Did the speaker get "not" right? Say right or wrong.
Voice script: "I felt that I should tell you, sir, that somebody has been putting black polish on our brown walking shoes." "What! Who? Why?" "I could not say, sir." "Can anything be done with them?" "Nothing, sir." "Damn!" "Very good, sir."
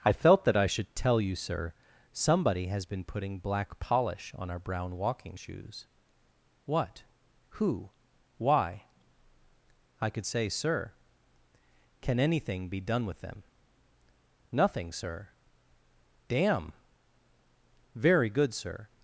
wrong